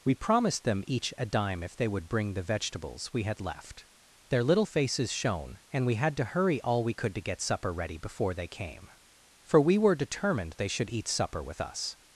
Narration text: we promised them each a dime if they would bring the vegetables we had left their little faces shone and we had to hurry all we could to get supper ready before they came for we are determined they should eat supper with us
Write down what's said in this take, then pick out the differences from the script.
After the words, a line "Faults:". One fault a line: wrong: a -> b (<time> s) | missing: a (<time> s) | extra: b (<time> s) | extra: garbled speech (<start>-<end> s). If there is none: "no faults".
we promised them each a dime if they would bring the vegetables we had left their little faces shone and we had to hurry all we could to get supper ready before they came for we were determined they should eat supper with us
Faults:
wrong: are -> were (9.8 s)